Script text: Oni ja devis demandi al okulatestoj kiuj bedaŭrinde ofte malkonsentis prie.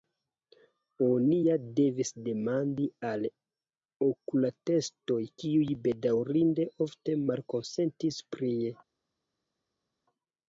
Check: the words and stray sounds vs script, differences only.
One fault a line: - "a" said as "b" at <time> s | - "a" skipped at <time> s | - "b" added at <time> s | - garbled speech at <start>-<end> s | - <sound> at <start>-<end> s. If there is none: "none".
none